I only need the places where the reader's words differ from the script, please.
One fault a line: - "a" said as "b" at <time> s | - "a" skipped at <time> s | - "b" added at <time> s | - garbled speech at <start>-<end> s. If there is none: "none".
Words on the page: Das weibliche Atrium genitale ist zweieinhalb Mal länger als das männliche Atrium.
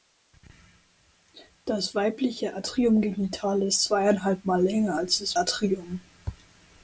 - "männliche" skipped at 5.4 s